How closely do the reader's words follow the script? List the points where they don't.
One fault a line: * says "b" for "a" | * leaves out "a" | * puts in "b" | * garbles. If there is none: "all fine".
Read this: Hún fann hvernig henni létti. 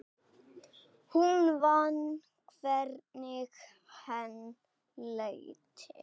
all fine